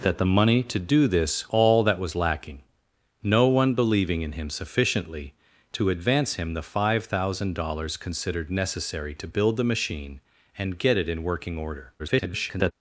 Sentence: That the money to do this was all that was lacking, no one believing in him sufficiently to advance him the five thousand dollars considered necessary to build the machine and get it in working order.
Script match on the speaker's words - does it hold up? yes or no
no